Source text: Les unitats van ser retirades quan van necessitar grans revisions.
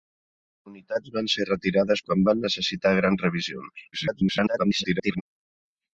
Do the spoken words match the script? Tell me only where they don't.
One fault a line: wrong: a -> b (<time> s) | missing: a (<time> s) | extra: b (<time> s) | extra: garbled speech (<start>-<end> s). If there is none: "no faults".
extra: garbled speech (3.9-5.2 s)